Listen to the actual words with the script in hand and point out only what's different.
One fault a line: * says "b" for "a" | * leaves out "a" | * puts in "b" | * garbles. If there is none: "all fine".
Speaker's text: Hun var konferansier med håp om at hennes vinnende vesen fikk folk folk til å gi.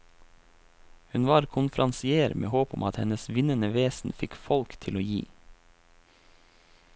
* leaves out "folk"